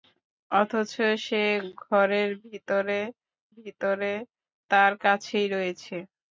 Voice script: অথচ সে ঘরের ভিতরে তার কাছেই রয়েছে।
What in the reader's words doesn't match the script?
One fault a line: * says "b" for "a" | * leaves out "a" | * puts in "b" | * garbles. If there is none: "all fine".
* puts in "ভিতরে"